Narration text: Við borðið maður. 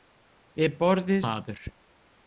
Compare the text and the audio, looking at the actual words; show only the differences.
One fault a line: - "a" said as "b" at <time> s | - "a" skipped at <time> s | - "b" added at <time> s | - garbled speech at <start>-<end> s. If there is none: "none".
none